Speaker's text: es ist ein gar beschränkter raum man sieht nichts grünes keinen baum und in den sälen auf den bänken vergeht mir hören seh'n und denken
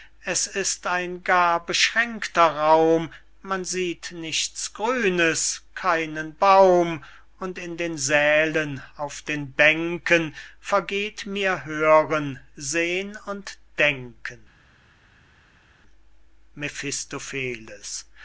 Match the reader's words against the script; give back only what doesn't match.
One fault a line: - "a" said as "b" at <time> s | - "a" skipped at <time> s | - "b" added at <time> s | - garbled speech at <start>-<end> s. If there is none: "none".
none